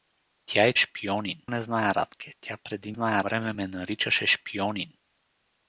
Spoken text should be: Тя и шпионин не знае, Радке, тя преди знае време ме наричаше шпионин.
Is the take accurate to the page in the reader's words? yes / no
yes